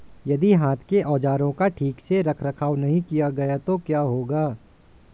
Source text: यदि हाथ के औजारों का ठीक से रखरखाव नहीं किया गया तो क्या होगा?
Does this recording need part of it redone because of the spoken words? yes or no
no